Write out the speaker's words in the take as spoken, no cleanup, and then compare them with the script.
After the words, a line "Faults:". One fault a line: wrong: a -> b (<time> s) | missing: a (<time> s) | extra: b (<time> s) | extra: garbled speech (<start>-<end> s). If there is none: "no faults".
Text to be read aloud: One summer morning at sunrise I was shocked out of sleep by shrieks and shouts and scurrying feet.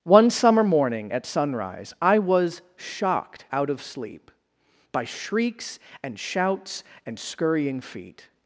One summer morning at sunrise I was shocked out of sleep by shrieks and shouts and scurrying feet.
Faults:
no faults